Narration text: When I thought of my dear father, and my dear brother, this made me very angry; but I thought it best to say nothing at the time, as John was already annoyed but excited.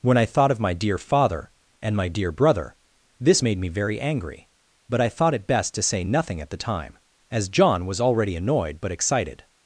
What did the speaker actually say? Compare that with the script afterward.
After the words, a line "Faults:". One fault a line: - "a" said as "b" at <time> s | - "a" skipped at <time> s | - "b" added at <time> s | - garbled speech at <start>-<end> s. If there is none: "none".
When I thought of my dear father, and my dear brother, this made me very angry; but I thought it best to say nothing at the time, as John was already annoyed but excited.
Faults:
none